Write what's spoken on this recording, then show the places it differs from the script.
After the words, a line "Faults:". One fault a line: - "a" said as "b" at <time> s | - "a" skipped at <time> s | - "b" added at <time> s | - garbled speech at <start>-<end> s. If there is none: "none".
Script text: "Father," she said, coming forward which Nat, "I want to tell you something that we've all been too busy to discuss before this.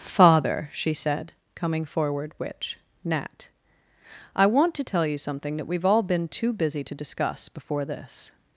"Father," she said, coming forward which Nat, "I want to tell you something that we've all been too busy to discuss before this.
Faults:
none